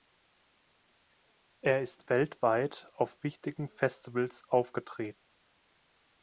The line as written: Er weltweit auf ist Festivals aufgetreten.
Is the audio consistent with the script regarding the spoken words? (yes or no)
no